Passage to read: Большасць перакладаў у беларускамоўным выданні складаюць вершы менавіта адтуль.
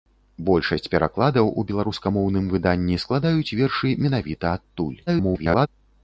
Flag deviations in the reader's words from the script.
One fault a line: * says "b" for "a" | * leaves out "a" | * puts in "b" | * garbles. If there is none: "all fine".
* garbles